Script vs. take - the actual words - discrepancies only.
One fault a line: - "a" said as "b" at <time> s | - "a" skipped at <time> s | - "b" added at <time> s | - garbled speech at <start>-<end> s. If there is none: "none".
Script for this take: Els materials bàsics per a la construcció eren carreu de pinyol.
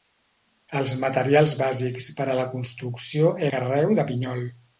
- "eren" skipped at 3.4 s